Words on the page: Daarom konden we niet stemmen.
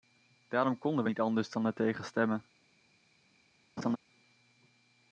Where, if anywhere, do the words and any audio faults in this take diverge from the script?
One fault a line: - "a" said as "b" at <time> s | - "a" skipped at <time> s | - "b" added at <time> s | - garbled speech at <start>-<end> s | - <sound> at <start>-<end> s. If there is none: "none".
- "anders dan ertegen" added at 1.2 s
- laugh at 3.8-4.0 s